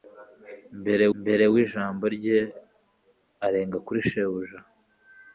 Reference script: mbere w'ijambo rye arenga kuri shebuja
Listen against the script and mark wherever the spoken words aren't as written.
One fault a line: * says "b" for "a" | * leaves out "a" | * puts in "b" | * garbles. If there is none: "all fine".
* puts in "mbere"